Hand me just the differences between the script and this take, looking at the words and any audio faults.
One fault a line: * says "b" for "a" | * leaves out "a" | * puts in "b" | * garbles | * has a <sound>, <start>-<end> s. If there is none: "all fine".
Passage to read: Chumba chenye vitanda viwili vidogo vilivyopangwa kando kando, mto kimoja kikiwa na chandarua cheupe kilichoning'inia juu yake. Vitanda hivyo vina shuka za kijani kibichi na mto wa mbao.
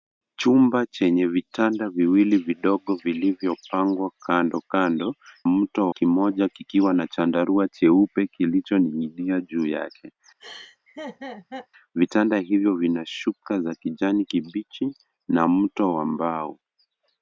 * has a laugh, 10.4-11.7 s